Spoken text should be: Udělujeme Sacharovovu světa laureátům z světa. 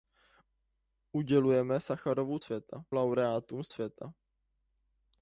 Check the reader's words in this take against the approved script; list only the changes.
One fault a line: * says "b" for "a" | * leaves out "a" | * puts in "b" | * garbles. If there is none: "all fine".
all fine